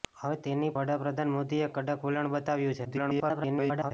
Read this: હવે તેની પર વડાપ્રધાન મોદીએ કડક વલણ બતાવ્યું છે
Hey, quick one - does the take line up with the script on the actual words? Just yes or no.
no